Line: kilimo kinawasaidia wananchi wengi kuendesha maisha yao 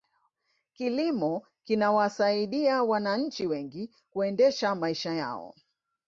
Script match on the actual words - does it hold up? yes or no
yes